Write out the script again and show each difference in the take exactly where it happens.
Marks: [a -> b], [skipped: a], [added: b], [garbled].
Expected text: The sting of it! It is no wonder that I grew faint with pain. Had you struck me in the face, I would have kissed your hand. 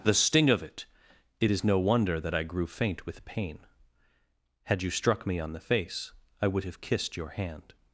The sting of it! It is no wonder that I grew faint with pain. Had you struck me [in -> on] the face, I would have kissed your hand.